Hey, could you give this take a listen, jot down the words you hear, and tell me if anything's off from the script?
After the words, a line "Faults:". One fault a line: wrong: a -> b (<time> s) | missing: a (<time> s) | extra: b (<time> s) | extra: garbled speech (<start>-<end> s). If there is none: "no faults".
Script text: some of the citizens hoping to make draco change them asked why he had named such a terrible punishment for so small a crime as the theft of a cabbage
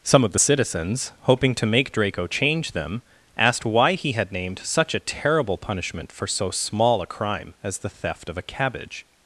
some of the citizens hoping to make draco change them asked why he had named such a terrible punishment for so small a crime as the theft of a cabbage
Faults:
no faults